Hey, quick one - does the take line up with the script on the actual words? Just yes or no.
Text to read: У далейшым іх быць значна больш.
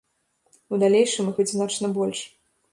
yes